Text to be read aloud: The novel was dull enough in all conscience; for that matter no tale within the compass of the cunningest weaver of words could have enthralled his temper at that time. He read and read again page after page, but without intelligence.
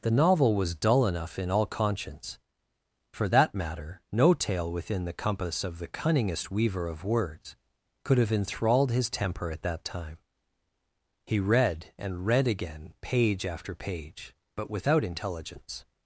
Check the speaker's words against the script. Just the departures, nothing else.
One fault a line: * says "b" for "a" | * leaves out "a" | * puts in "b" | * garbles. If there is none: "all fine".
all fine